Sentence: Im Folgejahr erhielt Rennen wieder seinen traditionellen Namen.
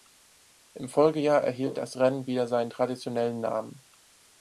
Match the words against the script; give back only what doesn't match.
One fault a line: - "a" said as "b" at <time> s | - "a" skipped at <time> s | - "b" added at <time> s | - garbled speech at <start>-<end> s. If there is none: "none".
- "das" added at 1.8 s